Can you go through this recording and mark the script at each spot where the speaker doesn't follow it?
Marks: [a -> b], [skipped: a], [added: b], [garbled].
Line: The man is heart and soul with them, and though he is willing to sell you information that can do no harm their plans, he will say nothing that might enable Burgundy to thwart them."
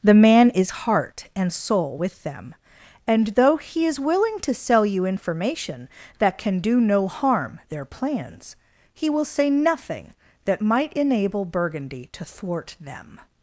The man is heart and soul with them, and though he is willing to sell you information that can do no harm their plans, he will say nothing that might enable Burgundy to thwart them."